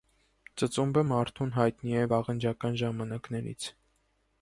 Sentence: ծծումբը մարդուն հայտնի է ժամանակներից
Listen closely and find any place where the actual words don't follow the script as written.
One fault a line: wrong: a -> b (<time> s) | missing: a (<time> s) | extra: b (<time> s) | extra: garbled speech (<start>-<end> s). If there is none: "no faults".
extra: վաղնջական (2.2 s)